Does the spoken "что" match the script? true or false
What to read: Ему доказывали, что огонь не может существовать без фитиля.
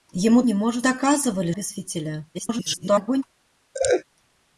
false